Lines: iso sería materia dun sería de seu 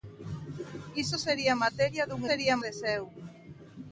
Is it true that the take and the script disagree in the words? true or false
false